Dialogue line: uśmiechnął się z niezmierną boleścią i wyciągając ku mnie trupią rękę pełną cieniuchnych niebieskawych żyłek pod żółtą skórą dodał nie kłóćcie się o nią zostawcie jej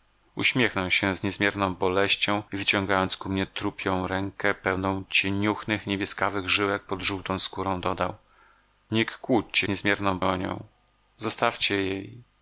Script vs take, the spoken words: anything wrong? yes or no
yes